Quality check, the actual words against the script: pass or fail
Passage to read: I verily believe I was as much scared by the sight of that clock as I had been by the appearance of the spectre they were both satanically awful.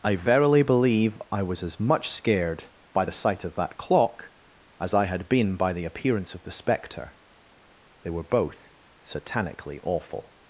pass